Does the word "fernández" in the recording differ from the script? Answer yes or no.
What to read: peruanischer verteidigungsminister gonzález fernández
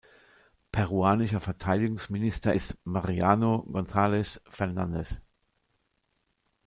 no